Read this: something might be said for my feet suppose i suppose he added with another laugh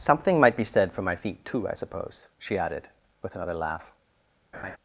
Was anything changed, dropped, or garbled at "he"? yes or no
yes